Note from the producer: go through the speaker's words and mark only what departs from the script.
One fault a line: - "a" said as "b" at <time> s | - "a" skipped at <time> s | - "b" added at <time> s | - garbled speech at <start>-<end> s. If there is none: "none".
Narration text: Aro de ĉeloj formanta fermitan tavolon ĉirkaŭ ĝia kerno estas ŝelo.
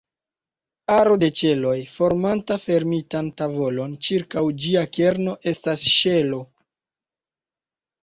none